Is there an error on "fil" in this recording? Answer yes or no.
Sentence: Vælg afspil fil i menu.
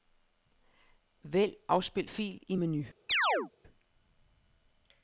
no